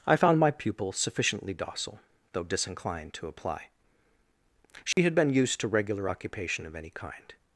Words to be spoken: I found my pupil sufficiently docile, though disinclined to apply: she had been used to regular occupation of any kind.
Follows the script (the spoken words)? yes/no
yes